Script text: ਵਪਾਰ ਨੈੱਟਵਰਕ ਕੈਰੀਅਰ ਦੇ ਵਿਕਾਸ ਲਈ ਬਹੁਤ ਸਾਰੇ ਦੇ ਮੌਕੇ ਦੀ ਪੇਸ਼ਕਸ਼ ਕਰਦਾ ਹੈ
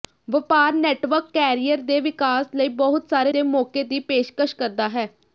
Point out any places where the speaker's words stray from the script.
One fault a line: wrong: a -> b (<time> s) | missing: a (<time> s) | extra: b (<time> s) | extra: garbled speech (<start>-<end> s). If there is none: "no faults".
no faults